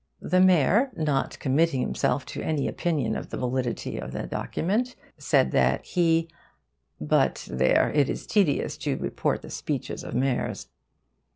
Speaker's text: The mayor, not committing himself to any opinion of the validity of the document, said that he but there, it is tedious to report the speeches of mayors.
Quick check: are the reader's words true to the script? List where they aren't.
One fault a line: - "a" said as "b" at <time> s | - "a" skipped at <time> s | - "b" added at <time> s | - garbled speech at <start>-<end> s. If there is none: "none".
none